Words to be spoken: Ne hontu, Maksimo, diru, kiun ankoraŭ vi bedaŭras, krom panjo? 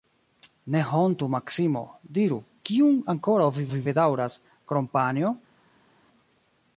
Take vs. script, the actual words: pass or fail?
fail